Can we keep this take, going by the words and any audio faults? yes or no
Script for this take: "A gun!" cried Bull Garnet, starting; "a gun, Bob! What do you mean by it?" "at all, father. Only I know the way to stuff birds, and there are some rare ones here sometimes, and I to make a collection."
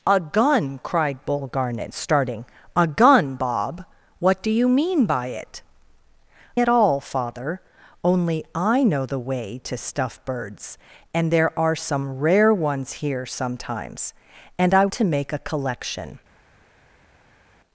yes